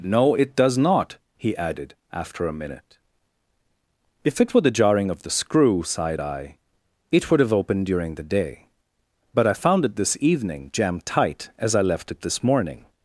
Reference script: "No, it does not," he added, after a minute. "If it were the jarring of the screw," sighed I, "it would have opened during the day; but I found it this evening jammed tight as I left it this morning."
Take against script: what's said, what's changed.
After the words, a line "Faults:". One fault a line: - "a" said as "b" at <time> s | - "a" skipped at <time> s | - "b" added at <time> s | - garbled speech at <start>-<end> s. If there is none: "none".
"No, it does not," he added, after a minute. "If it were the jarring of the screw," sighed I, "it would have opened during the day; but I found it this evening jammed tight as I left it this morning."
Faults:
none